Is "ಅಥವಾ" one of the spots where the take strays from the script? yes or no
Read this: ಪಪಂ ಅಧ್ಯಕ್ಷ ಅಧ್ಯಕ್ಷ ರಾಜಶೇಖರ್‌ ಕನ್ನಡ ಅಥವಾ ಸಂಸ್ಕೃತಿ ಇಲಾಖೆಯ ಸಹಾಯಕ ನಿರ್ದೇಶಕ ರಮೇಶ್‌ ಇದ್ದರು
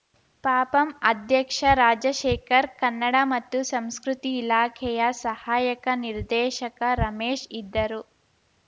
yes